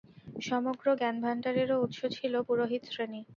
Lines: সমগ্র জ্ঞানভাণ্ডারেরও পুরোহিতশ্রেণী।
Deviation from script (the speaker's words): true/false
true